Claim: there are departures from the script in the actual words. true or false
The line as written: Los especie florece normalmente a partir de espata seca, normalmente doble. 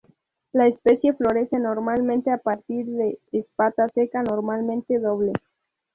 true